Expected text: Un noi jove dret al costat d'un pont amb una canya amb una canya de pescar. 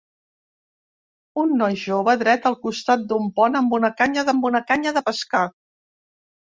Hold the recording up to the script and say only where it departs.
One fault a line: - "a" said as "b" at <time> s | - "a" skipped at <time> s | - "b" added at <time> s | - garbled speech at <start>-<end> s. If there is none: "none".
none